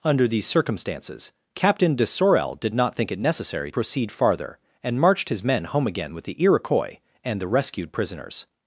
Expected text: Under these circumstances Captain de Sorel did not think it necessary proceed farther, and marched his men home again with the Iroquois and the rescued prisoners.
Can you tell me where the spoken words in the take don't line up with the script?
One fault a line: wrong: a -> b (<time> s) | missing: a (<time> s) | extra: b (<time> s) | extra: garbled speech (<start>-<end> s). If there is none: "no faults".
no faults